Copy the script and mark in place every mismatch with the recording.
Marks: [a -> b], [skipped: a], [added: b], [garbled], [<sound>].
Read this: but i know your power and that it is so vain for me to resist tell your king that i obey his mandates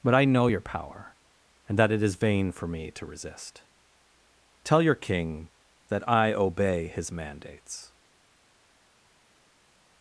but i know your power and that it is [skipped: so] vain for me to resist tell your king that i obey his mandates